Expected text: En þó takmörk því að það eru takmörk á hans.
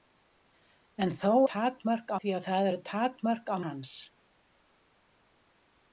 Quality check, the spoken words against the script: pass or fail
pass